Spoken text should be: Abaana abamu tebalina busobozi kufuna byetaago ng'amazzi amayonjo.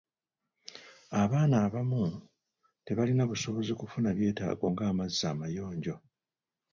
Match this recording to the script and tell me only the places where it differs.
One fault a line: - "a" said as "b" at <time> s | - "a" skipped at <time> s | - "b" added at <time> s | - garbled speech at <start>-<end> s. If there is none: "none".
none